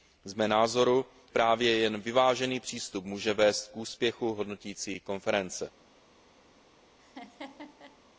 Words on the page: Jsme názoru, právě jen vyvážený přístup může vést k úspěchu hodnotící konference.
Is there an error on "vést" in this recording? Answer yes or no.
no